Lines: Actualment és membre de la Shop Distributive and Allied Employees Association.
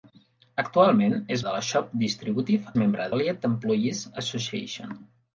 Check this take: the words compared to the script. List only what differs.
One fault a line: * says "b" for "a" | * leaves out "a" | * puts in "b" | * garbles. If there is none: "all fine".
* leaves out "membre"
* says "membre" for "and"